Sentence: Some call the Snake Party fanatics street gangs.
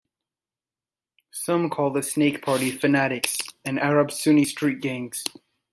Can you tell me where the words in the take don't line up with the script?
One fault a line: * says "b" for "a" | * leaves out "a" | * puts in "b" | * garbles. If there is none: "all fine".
* puts in "and Arab Sunni"